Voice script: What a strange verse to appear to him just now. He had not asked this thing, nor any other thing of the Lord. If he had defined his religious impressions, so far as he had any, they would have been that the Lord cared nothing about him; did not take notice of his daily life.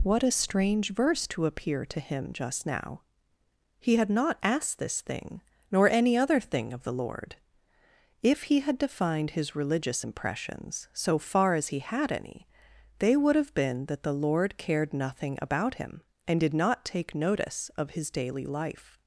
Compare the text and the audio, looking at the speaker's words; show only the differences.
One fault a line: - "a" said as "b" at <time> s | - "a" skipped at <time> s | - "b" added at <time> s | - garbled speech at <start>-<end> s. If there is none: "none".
- "and" added at 16.3 s